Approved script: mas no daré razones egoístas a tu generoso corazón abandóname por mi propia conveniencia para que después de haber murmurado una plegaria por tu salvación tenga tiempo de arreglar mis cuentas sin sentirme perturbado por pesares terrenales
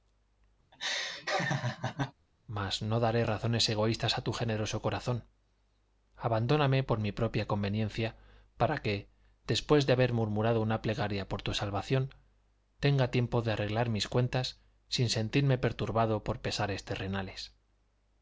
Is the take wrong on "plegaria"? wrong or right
right